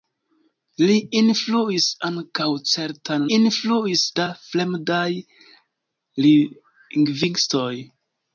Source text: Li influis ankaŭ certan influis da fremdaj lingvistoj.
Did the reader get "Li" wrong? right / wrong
right